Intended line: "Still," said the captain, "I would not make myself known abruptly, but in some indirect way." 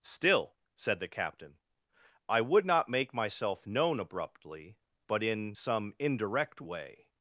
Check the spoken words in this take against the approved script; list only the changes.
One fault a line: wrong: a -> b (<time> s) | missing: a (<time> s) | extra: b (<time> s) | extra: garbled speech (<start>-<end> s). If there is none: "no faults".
no faults